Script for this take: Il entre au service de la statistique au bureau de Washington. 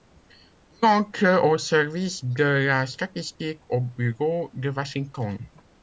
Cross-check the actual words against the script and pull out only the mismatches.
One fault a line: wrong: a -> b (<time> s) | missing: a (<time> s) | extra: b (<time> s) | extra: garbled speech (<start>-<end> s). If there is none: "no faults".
no faults